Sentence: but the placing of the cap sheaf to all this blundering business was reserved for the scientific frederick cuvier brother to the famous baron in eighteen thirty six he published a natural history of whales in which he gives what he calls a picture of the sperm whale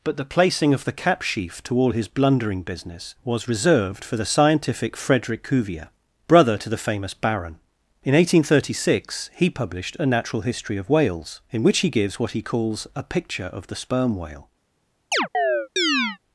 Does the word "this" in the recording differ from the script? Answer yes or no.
yes